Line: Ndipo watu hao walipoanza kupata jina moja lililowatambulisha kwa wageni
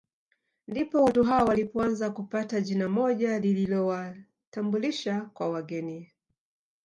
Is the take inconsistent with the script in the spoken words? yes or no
no